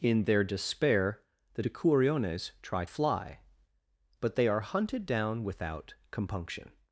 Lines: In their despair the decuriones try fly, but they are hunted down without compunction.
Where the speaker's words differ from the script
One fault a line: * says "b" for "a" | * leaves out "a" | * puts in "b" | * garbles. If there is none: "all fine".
all fine